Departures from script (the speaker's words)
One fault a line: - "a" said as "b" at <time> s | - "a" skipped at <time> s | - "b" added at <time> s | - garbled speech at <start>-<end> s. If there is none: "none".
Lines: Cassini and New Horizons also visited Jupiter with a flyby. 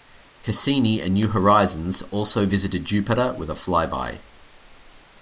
none